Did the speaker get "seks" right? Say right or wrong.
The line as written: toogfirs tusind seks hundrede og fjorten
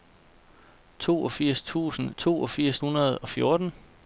wrong